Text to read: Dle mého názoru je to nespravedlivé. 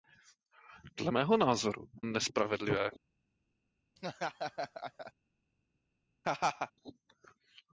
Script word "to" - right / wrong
wrong